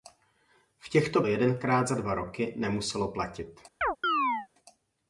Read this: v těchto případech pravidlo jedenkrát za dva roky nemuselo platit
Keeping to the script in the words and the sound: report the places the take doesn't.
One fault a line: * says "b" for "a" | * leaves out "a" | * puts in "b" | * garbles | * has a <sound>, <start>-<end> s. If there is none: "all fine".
* leaves out "případech pravidlo"
* has a chirp, 3.8-4.5 s